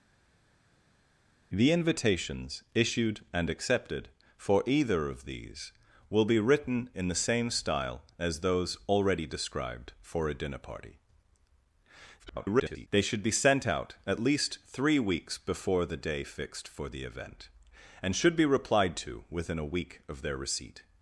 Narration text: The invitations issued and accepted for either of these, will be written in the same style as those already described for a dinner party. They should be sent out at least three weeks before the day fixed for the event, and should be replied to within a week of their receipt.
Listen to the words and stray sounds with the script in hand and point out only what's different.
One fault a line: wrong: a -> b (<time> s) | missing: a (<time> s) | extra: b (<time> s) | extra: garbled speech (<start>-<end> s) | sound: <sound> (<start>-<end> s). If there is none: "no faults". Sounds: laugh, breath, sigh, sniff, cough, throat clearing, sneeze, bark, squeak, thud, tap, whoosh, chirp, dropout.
extra: garbled speech (12.2-12.9 s)